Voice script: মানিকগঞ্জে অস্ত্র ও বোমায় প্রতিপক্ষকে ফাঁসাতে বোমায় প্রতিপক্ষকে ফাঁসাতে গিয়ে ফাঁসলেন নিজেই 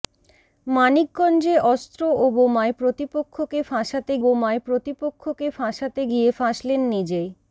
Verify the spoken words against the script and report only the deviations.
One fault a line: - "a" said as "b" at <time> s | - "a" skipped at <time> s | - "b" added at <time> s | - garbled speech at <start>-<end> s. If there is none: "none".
none